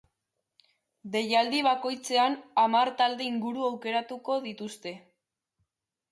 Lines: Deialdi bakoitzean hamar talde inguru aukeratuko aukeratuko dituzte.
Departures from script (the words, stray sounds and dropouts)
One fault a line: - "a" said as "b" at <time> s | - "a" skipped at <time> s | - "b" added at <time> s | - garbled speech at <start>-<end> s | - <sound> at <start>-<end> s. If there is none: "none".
- "aukeratuko" skipped at 4.4 s